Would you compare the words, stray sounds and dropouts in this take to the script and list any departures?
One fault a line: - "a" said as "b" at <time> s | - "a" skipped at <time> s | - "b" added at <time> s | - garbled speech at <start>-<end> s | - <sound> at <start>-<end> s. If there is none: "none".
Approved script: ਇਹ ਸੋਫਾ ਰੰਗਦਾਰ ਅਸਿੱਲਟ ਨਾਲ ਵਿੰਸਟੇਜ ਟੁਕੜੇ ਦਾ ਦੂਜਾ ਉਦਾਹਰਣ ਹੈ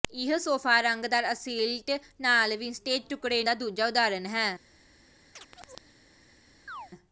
- chirp at 5.4-6.0 s
- chirp at 6.7-6.9 s